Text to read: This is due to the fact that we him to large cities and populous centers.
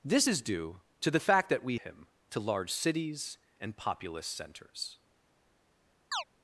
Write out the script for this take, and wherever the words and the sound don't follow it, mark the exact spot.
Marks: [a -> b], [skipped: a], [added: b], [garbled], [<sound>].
This is due to the fact that we him to large cities and populous centers. [chirp]